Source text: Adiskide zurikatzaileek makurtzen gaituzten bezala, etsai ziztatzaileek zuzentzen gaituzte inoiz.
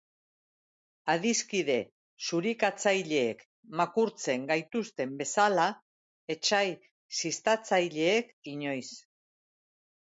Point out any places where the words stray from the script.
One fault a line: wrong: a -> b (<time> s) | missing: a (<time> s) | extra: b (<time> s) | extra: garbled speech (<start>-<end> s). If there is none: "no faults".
missing: zuzentzen gaituzte (8.3 s)